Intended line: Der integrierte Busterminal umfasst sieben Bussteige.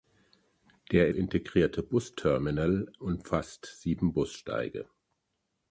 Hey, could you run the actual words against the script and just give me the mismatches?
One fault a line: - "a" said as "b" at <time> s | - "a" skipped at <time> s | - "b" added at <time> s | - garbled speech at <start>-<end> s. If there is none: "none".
none